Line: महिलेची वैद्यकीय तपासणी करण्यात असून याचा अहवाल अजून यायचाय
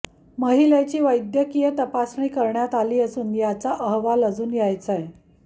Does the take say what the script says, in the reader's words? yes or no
no